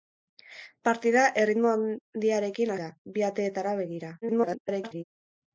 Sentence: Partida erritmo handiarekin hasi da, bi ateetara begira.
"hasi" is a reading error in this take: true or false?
true